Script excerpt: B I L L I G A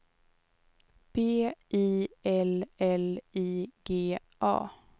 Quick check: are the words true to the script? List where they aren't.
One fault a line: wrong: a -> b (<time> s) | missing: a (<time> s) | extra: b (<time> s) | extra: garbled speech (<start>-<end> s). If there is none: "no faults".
no faults